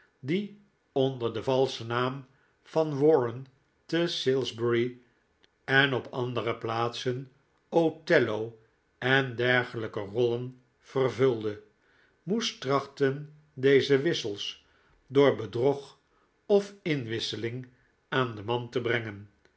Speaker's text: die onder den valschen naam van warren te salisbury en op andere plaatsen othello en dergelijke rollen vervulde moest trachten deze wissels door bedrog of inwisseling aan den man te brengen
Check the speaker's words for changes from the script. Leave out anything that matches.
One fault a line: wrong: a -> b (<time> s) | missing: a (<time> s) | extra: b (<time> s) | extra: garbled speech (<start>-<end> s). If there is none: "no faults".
no faults